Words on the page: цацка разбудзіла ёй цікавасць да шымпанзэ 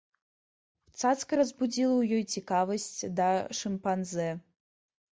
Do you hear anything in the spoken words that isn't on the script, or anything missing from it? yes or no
yes